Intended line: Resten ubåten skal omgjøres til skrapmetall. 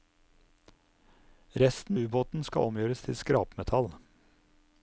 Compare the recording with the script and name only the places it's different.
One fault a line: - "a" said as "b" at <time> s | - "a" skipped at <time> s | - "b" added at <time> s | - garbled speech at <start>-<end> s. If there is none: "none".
none